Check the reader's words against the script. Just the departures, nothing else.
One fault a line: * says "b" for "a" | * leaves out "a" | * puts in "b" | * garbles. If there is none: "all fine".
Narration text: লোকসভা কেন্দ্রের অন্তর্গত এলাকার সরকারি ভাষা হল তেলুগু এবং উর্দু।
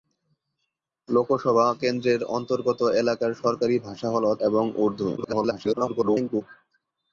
* leaves out "তেলুগু"
* garbles